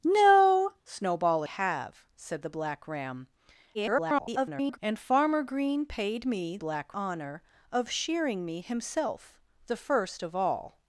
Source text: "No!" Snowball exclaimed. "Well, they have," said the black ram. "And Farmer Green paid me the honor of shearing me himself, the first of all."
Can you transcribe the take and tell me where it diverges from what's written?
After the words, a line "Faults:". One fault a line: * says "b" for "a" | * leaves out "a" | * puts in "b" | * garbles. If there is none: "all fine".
"No!" Snowball have," said the black ram. [garbled] "And Farmer Green paid me black honor of shearing me himself, the first of all."
Faults:
* leaves out "exclaimed Well they"
* garbles
* says "black" for "the"